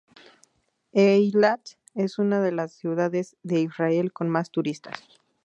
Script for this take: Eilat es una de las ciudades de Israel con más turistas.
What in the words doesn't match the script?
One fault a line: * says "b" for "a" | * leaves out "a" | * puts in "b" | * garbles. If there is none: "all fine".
all fine